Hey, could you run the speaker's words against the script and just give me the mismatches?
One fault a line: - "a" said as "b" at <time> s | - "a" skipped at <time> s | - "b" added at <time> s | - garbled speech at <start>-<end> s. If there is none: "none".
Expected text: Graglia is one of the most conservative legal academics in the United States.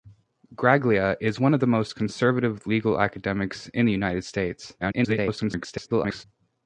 - garbled speech at 4.8-6.2 s